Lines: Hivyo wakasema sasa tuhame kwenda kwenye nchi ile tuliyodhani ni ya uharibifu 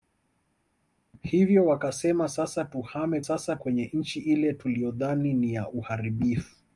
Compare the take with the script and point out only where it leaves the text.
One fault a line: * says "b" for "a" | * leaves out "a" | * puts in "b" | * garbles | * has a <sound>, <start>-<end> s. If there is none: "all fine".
* says "sasa" for "kwenda"